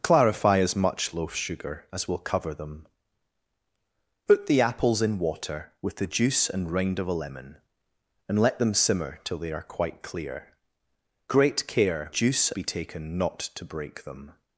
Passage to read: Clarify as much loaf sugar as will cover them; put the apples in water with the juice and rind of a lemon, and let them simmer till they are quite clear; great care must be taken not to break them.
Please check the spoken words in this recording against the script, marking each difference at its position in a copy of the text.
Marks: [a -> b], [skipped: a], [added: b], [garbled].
Clarify as much loaf sugar as will cover them; put the apples in water with the juice and rind of a lemon, and let them simmer till they are quite clear; great care [must -> juice] be taken not to break them.